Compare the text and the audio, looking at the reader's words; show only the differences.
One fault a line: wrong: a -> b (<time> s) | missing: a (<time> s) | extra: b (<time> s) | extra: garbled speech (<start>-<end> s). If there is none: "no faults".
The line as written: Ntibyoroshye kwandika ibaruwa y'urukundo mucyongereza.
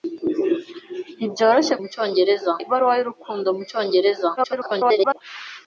wrong: kwandika -> mucyongereza (1.8 s)
extra: garbled speech (4.4-5.2 s)